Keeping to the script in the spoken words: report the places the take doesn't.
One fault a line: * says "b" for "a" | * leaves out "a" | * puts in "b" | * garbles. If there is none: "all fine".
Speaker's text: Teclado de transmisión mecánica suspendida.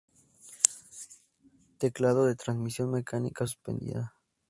all fine